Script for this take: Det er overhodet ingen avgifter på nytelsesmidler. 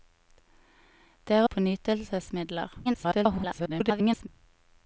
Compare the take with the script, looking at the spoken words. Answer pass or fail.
fail